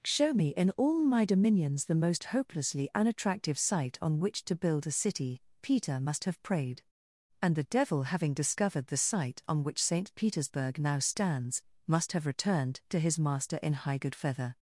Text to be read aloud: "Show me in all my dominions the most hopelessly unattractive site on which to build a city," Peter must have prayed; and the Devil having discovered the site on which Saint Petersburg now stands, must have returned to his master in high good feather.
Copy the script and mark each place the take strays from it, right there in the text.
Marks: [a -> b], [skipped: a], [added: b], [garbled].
"Show me in all my dominions the most hopelessly unattractive site on which to build a city," Peter must have prayed; and the Devil having discovered the site on which Saint Petersburg now stands, must have returned to his master in high good feather.